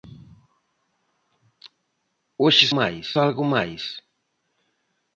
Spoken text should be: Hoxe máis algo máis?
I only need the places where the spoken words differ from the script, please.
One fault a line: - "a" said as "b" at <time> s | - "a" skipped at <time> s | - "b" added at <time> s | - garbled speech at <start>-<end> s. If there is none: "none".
none